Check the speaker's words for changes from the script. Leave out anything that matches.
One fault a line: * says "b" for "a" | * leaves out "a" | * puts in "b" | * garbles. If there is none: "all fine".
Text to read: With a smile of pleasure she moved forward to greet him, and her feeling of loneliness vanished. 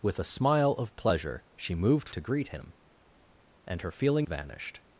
* leaves out "forward"
* leaves out "of loneliness"